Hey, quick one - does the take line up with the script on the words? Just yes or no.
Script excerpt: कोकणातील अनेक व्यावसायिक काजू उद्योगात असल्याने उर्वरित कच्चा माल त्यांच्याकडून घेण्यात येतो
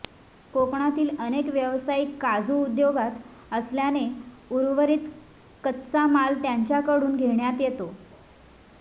yes